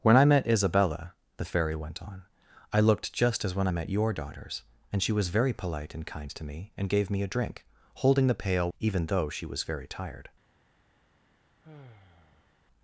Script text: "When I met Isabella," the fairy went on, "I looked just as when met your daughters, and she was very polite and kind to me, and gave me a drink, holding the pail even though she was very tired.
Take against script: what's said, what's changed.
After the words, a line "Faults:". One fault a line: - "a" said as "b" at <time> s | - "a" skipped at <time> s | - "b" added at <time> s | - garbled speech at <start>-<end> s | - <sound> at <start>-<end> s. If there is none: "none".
"When I met Isabella," the fairy went on, "I looked just as when met your daughters, and she was very polite and kind to me, and gave me a drink, holding the pail even though she was very tired.
Faults:
- sigh at 11.6-12.6 s